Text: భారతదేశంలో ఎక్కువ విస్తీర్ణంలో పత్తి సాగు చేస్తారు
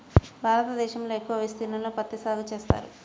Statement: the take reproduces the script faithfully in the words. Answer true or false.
true